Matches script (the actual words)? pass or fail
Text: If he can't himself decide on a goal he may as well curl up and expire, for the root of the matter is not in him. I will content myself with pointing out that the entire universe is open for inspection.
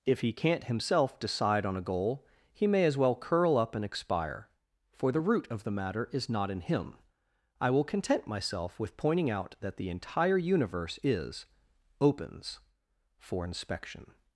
fail